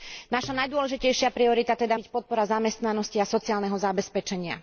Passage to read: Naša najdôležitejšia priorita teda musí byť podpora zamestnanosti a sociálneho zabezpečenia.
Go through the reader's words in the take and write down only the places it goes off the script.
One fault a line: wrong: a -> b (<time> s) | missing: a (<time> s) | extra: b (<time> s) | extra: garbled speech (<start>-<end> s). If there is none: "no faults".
missing: musí (2.0 s)